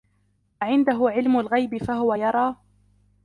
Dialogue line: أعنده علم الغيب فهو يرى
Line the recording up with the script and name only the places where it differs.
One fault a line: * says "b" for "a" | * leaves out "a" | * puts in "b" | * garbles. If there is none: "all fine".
all fine